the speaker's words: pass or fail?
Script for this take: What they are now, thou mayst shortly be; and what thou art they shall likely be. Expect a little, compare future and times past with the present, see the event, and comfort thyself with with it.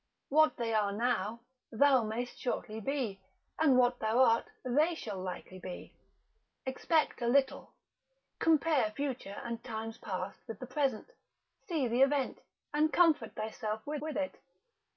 pass